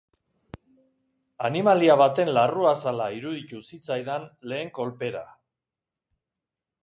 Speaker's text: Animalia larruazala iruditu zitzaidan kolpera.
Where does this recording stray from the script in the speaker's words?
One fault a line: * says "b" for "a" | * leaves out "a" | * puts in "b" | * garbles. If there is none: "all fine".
* puts in "baten"
* puts in "lehen"